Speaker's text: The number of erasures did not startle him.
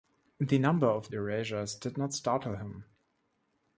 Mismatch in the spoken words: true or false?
false